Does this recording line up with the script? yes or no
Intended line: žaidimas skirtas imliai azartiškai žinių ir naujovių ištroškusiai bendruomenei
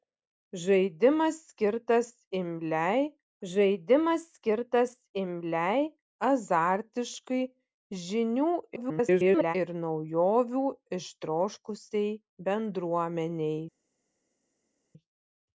no